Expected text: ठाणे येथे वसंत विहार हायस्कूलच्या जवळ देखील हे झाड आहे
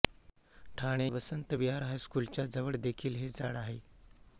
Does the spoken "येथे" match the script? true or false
false